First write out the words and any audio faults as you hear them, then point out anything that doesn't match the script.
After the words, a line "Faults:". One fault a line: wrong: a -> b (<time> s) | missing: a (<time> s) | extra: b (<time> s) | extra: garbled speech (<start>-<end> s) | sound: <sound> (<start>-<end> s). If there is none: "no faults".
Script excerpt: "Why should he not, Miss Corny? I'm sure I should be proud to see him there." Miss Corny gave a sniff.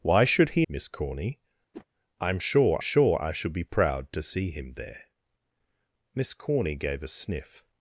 "Why should he Miss Corny? I'm sure sure I should be proud to see him there." Miss Corny gave a sniff.
Faults:
missing: not (0.7 s)
sound: whoosh (1.7-1.9 s)
extra: sure (2.8 s)